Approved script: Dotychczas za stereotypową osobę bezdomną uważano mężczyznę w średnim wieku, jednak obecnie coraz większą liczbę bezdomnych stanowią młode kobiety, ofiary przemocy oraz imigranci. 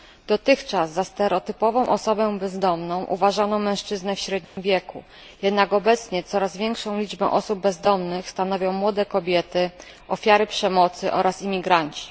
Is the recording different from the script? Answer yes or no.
yes